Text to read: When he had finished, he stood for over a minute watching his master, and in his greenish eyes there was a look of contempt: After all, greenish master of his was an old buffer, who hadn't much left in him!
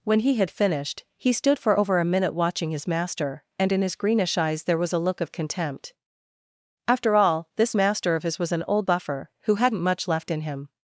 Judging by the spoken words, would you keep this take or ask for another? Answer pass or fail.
fail